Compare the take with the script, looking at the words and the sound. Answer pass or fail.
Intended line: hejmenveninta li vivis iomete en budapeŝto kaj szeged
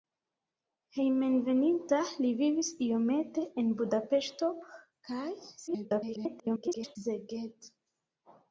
fail